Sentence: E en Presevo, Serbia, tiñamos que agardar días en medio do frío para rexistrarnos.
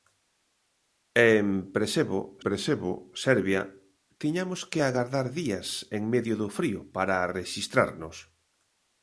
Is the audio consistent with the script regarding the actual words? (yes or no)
no